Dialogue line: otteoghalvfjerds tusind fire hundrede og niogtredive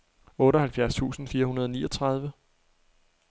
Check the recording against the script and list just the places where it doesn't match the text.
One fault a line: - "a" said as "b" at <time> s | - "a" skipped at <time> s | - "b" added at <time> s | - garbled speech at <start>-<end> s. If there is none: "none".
none